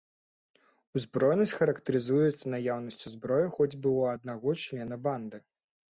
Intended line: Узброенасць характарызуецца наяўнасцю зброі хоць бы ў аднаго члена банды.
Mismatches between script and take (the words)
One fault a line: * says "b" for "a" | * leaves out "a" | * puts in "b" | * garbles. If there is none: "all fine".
all fine